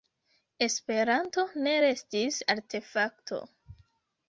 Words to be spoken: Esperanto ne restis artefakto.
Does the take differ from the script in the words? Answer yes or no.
no